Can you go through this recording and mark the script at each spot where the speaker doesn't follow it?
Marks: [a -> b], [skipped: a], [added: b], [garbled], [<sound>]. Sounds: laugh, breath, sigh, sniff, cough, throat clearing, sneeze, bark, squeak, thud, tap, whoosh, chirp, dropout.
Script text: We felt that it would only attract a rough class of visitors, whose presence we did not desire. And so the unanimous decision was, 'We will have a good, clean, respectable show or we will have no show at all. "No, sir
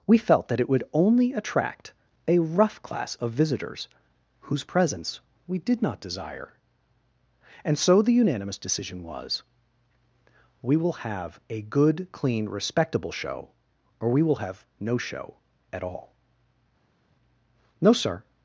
We felt that it would only attract a rough class of visitors, whose presence we did not desire. And so the unanimous decision was, 'We will have a good, clean, respectable show or we will have no show at all. "No, sir